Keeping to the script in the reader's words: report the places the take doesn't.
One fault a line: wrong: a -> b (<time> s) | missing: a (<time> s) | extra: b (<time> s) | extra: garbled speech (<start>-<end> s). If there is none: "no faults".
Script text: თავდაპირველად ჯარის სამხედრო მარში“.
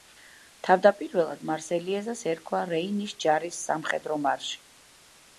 extra: მარსელიეზას ერქვა რეინის (1.5 s)